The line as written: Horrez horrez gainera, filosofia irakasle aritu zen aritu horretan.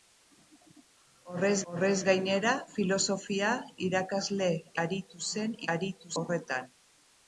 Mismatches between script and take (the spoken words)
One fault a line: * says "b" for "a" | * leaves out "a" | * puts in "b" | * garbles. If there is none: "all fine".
all fine